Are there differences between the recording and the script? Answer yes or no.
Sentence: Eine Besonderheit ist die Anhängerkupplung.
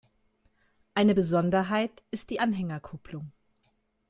no